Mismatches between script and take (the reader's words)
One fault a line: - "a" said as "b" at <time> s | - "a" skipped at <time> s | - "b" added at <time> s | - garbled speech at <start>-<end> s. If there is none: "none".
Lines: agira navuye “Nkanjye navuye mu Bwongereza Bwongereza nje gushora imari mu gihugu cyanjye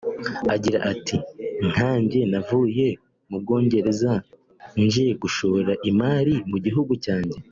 - "navuye" said as "ati" at 0.9 s
- "Bwongereza" skipped at 4.1 s